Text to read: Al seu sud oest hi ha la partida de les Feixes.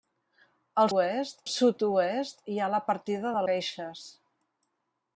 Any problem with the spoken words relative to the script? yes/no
yes